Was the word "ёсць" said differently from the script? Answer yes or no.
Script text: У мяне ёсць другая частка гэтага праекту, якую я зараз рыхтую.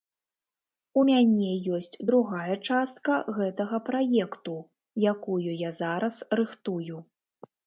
no